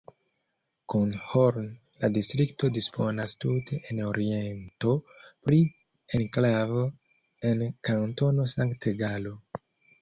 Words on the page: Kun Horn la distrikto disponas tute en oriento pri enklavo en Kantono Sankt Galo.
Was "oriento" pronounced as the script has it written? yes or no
yes